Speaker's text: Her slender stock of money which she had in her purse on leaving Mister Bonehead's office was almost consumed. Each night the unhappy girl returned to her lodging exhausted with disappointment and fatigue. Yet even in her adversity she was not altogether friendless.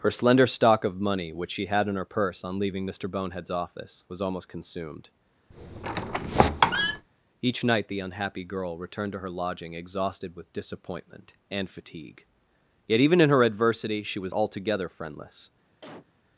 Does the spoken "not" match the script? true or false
false